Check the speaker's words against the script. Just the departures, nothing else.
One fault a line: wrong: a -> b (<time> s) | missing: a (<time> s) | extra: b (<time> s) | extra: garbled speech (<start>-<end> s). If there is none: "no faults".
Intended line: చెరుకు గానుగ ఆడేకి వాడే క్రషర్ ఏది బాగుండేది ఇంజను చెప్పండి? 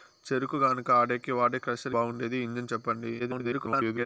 missing: ఏది (1.9 s)
extra: garbled speech (3.2-4.1 s)